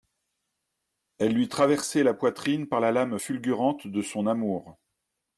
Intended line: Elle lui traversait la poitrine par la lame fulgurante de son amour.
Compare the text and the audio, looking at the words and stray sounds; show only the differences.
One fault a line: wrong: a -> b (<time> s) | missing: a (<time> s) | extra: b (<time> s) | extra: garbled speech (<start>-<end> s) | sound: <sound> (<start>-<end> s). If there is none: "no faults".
no faults